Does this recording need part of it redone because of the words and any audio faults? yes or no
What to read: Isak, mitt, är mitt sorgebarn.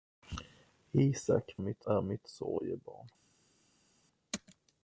no